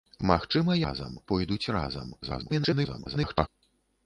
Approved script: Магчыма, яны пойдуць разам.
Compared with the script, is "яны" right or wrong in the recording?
wrong